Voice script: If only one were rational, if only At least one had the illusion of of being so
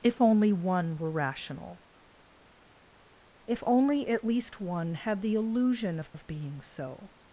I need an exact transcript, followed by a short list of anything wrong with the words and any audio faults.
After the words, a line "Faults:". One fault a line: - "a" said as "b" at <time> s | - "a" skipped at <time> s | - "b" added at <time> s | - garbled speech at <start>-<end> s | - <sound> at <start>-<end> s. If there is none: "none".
If only one were rational, if only At least one had the illusion of of being so
Faults:
none